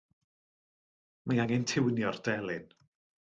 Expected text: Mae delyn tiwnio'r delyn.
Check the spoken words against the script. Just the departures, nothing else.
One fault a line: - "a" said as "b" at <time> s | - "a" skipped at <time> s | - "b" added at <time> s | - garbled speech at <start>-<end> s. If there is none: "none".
- "delyn" said as "angen" at 1.4 s